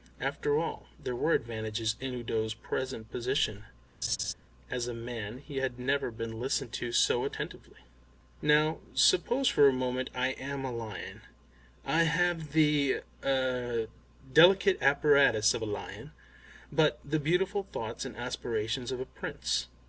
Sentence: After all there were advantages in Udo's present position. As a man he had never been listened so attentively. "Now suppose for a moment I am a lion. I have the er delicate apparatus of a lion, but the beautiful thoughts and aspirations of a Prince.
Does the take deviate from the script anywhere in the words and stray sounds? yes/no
yes